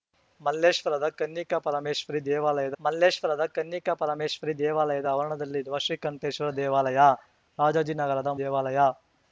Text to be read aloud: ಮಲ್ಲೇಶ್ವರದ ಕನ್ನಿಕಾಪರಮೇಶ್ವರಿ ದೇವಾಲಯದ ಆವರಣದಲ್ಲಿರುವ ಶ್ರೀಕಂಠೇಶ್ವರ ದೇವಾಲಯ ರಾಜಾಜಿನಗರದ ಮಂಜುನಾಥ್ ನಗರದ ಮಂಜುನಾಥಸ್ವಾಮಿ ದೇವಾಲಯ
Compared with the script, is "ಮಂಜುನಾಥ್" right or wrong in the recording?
wrong